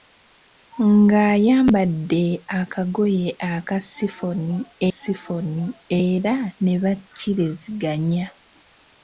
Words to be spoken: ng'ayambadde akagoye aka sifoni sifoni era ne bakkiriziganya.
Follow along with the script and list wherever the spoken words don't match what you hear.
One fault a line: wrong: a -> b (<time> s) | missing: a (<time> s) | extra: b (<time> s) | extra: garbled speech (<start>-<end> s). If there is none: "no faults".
no faults